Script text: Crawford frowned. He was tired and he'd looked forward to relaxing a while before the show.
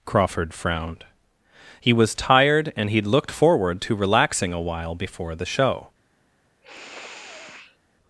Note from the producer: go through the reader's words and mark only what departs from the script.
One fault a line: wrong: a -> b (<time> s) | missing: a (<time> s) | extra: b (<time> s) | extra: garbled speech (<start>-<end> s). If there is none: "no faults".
no faults